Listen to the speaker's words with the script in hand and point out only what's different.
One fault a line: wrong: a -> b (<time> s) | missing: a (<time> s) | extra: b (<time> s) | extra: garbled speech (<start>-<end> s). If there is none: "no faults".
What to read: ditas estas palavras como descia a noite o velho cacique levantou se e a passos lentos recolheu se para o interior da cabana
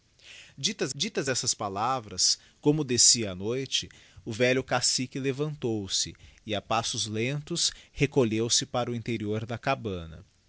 extra: ditas (0.9 s)